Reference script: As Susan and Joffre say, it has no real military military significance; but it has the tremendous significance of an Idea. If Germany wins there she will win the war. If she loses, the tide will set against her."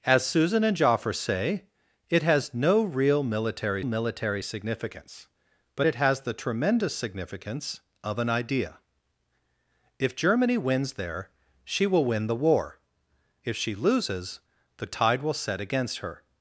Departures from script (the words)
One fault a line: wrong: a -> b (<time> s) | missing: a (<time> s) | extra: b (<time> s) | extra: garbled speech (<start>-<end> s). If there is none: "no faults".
no faults